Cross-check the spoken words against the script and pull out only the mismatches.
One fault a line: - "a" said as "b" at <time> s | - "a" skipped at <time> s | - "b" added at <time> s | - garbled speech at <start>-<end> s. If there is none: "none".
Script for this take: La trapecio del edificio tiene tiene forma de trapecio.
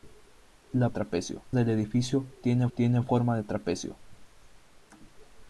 none